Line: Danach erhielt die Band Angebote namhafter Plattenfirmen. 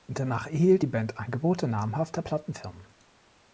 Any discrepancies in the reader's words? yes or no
no